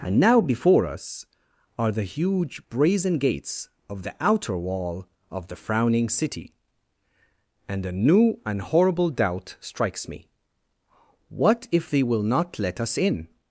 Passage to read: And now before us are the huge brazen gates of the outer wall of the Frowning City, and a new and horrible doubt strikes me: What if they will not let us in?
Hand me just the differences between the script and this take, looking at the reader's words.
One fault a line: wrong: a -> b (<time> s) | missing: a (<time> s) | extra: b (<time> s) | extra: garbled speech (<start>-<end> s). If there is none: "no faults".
no faults